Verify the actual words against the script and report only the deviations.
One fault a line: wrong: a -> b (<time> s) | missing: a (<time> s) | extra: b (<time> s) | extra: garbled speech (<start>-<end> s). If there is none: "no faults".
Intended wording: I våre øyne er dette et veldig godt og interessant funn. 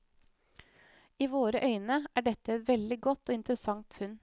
no faults